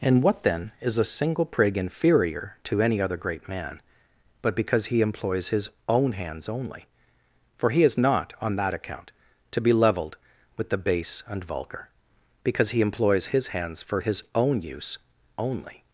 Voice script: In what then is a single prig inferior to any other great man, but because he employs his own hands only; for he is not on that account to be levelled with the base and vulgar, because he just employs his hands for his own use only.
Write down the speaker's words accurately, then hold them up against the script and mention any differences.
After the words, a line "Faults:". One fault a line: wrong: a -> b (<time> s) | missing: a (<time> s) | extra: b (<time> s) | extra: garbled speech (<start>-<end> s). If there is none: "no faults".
In what then is a single prig inferior to any other great man, but because he employs his own hands only; for he is not on that account to be levelled with the base and vulgar, because he employs his hands for his own use only.
Faults:
missing: just (12.8 s)